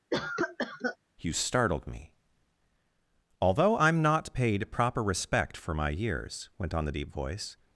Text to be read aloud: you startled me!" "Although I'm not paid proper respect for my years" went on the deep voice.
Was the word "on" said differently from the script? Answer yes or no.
no